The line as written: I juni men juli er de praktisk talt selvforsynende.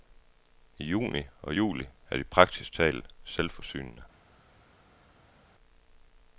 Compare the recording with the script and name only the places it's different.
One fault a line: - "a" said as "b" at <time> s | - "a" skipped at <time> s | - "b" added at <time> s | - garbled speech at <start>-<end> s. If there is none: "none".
- "men" said as "og" at 1.4 s